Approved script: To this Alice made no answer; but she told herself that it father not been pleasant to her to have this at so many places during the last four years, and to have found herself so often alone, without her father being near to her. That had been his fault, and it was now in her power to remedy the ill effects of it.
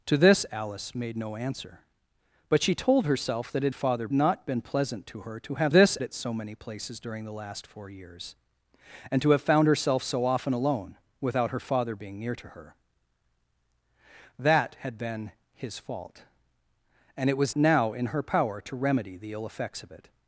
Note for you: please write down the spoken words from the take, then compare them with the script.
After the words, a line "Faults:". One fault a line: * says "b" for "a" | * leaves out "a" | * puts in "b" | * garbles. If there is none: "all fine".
To this Alice made no answer; but she told herself that it father not been pleasant to her to have this at so many places during the last four years, and to have found herself so often alone, without her father being near to her. That had been his fault, and it was now in her power to remedy the ill effects of it.
Faults:
all fine